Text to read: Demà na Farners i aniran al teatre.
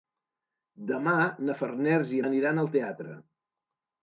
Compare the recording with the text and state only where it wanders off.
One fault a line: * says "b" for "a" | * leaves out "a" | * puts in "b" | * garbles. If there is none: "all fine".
all fine